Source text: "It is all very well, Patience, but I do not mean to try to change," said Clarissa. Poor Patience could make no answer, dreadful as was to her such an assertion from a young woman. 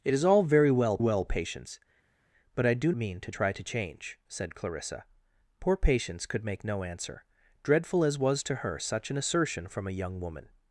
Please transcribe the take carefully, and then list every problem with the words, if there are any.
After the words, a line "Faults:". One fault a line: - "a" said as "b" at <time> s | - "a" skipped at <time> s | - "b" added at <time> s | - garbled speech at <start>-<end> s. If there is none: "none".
"It is all very well well, Patience, but I do mean to try to change," said Clarissa. Poor Patience could make no answer, dreadful as was to her such an assertion from a young woman.
Faults:
- "well" added at 1.0 s
- "not" skipped at 2.9 s